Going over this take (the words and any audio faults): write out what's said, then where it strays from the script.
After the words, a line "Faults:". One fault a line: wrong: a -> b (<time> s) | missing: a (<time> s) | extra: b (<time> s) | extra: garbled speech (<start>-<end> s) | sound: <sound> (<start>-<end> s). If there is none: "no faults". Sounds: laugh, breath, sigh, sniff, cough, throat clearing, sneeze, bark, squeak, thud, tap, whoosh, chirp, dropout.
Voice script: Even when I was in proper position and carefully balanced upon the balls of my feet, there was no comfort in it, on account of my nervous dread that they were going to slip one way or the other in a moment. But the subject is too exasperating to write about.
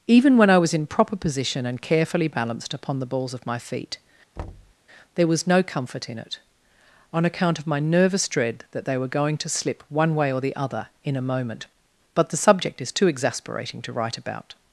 Even when I was in proper position and carefully balanced upon the balls of my feet, there was no comfort in it, on account of my nervous dread that they were going to slip one way or the other in a moment. But the subject is too exasperating to write about.
Faults:
sound: thud (4.4-4.7 s)